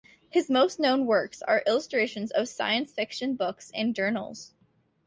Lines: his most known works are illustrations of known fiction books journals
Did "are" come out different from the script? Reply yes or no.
no